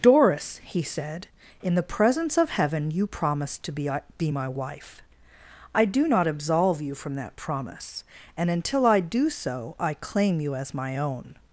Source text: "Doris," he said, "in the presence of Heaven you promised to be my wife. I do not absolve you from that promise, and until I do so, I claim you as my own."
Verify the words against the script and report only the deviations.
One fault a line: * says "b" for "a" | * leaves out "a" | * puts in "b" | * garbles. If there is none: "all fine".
* puts in "be"